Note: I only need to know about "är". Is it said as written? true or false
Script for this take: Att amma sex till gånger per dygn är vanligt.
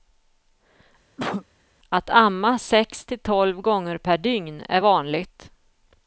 true